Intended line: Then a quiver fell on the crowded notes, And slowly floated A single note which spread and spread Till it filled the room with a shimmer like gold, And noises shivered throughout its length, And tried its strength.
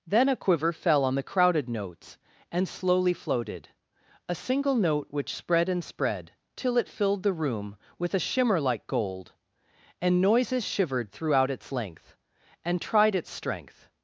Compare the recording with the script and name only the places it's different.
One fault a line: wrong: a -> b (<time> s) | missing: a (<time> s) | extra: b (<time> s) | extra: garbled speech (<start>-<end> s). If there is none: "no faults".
no faults